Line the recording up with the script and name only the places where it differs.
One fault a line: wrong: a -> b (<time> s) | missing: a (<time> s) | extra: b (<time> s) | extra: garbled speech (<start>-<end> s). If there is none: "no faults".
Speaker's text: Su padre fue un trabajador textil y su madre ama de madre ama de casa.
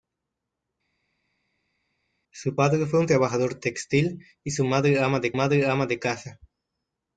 no faults